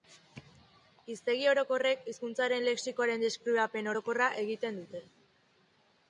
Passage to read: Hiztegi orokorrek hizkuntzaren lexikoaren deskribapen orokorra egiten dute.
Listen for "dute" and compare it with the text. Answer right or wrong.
right